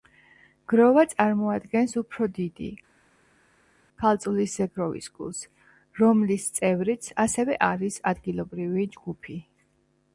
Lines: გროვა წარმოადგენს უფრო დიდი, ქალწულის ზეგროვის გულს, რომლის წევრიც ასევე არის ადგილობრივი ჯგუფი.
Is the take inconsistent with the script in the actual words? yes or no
no